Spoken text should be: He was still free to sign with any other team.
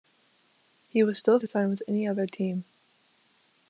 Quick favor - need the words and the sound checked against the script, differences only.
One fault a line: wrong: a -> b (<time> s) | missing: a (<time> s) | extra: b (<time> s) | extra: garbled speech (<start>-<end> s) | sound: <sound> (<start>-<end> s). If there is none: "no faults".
missing: free (1.4 s)